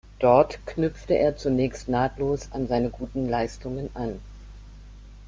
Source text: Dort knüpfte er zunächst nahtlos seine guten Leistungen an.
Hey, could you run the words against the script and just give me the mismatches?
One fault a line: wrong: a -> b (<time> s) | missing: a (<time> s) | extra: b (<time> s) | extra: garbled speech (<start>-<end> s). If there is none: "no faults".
extra: an (2.5 s)